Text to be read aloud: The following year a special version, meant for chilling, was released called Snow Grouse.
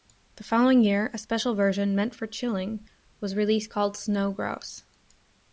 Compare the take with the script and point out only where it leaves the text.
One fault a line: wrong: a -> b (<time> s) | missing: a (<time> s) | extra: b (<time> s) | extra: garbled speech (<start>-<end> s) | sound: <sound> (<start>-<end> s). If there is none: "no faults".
no faults